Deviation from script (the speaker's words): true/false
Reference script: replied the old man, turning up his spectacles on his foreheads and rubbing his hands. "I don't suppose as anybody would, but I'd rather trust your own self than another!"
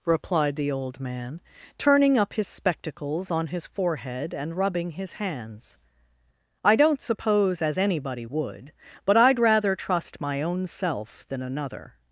true